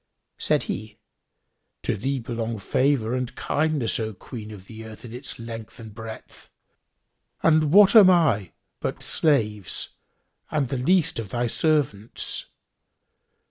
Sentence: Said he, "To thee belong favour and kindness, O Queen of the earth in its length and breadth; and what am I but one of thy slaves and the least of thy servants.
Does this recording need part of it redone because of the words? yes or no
yes